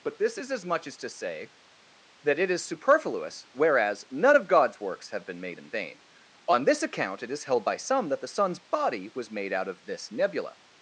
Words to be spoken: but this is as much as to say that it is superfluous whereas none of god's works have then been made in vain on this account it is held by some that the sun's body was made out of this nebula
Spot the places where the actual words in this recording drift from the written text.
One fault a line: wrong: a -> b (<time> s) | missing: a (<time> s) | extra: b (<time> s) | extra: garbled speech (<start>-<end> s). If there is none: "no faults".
missing: then (5.3 s)